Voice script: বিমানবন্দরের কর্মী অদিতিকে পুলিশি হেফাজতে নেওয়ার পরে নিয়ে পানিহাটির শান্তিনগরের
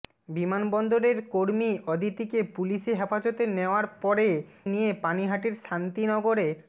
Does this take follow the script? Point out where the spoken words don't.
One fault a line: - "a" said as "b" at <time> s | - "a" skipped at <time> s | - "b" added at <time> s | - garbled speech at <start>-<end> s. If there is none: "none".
none